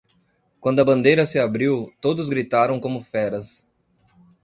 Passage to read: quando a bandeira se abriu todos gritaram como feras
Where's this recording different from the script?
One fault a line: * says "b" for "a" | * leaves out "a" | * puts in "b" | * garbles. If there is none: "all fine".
all fine